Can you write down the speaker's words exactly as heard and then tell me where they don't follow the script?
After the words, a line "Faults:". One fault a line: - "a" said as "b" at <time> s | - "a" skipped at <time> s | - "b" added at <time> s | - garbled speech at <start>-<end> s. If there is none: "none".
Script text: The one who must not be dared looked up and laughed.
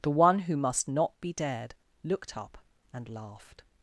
The one who must not be dared looked up and laughed.
Faults:
none